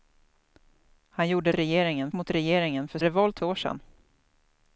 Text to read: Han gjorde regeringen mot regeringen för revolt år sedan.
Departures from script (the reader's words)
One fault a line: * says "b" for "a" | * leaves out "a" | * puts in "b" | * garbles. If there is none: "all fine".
all fine